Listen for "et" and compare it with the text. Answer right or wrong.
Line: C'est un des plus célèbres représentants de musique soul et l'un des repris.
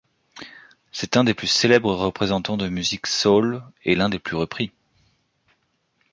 right